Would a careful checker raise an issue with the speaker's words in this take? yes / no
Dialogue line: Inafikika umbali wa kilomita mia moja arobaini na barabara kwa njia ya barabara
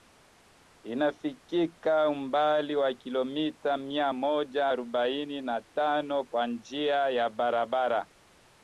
yes